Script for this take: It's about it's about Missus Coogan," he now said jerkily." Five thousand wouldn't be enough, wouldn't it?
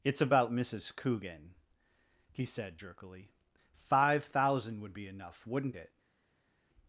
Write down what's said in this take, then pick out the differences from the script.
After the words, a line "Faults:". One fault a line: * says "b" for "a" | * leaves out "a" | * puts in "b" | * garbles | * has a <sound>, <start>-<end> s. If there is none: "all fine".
It's about Missus Coogan," he said jerkily." Five thousand would be enough, wouldn't it?
Faults:
* leaves out "it's about"
* leaves out "now"
* says "would" for "wouldn't"